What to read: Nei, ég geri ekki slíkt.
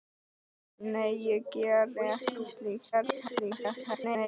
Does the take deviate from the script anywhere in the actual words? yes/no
yes